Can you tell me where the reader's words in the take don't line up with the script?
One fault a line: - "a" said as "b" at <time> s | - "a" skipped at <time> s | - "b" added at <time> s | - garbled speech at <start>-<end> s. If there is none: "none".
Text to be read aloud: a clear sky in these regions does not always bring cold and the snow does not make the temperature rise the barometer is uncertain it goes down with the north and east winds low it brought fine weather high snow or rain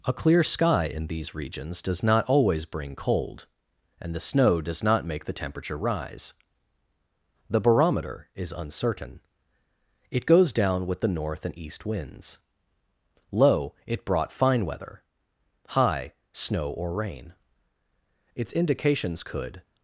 - "its indications could" added at 18.3 s